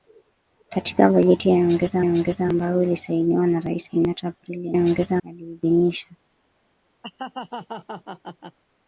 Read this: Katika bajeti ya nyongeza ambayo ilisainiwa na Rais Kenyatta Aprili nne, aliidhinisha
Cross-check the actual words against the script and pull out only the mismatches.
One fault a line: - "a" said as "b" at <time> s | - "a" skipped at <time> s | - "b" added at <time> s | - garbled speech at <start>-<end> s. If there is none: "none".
- "nyongeza" added at 2.0 s
- "nne" said as "nyongeza" at 4.7 s